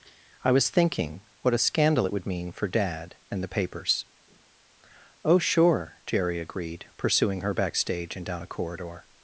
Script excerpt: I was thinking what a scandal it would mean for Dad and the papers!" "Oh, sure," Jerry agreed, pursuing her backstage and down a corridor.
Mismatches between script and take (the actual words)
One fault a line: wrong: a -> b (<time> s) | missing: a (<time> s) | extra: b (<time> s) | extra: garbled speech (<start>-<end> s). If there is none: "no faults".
no faults